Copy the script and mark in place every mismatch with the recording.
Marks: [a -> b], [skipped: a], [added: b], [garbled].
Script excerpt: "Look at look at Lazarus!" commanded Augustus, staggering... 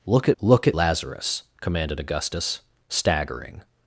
"Look at look at Lazarus!" commanded Augustus, staggering...